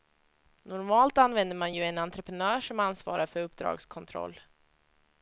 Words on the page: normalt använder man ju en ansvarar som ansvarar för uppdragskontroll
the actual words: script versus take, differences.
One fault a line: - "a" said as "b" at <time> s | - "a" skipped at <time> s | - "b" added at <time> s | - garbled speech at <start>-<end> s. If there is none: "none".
- "ansvarar" said as "entreprenör" at 2.0 s